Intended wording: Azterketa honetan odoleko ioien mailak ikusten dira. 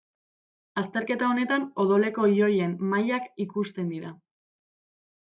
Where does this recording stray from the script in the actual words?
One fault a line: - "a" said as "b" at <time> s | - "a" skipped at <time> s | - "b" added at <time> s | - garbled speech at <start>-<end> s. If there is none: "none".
none